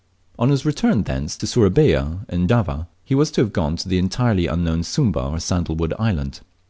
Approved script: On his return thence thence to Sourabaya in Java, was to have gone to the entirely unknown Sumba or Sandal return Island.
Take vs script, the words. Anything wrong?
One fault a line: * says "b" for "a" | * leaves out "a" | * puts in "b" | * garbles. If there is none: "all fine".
* leaves out "thence"
* puts in "he"
* says "wood" for "return"